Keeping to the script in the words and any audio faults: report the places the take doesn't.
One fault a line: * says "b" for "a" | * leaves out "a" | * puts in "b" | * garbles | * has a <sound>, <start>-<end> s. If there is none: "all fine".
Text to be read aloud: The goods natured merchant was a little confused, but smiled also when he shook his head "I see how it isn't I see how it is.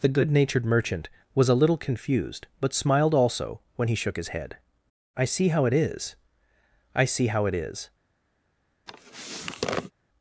* says "good" for "goods"
* says "is" for "isn't"
* has a sniff, 8.9-9.9 s